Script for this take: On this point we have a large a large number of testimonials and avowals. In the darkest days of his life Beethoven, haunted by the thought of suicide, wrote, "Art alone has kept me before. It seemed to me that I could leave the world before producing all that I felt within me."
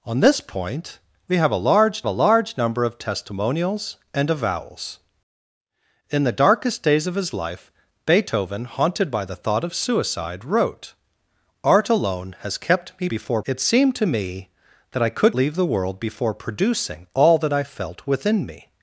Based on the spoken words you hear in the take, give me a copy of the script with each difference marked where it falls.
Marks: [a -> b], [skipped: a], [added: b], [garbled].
On this point we have a large a large number of testimonials and avowals. In the darkest days of his life Beethoven, haunted by the thought of suicide, wrote, "Art alone has kept me before. It seemed to me that I could leave the world before producing all that I felt within me."